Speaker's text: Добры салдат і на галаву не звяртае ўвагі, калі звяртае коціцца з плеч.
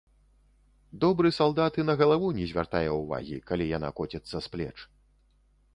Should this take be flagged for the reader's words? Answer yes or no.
yes